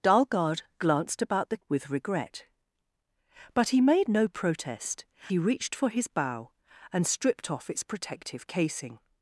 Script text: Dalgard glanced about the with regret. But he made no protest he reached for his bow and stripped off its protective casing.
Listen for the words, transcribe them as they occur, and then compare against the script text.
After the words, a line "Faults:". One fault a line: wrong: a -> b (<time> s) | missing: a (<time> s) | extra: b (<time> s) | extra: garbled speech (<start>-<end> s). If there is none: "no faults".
Dalgard glanced about the with regret. But he made no protest he reached for his bow and stripped off its protective casing.
Faults:
no faults